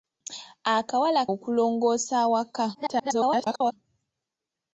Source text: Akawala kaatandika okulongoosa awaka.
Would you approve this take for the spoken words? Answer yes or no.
no